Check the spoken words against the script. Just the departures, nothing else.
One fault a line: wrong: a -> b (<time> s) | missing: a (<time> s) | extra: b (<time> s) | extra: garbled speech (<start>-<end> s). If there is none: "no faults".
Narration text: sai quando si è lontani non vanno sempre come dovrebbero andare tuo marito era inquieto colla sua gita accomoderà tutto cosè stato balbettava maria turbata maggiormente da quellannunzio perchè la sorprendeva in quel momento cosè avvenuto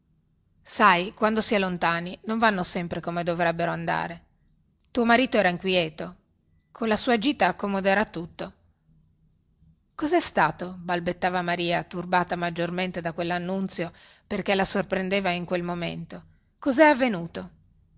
no faults